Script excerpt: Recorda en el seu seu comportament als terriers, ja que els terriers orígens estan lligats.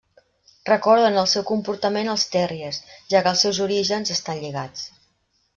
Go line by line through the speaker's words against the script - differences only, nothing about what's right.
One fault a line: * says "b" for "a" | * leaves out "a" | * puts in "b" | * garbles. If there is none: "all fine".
* leaves out "seu"
* says "seus" for "terriers"